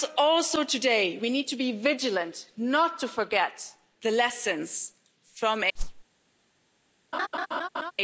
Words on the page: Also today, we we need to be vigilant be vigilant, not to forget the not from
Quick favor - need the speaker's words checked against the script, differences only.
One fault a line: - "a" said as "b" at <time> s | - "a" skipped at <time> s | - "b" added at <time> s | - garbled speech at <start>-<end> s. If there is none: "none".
- "we" skipped at 1.3 s
- "be vigilant" skipped at 2.5 s
- "not" said as "lessons" at 4.1 s